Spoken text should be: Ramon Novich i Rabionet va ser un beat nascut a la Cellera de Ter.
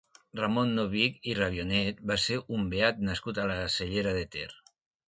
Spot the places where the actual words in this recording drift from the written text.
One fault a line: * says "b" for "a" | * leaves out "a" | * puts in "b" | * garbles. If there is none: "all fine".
all fine